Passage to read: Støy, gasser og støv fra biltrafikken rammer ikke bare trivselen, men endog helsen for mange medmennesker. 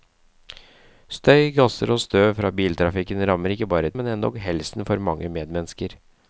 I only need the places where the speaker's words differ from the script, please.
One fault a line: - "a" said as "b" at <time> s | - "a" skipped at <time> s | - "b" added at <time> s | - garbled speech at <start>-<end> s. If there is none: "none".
- "trivselen" skipped at 3.9 s